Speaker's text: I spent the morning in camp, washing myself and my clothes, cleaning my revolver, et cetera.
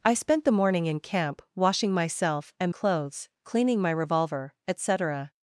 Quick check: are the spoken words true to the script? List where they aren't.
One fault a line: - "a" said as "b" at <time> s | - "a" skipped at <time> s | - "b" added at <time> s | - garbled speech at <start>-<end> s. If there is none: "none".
- "my" skipped at 2.7 s